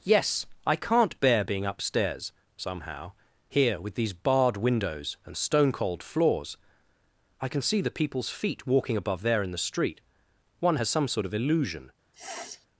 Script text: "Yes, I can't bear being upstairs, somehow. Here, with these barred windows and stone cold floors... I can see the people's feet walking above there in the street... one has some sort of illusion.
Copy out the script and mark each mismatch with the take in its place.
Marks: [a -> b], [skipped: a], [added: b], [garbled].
"Yes, I can't bear being upstairs, somehow. Here, with these barred windows and stone cold floors... I can see the people's feet walking above there in the street... one has some sort of illusion.